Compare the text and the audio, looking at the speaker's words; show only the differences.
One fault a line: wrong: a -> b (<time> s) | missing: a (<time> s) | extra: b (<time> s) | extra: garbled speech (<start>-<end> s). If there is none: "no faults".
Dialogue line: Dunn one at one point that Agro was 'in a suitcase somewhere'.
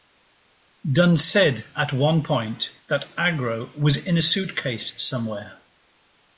wrong: one -> said (1.2 s)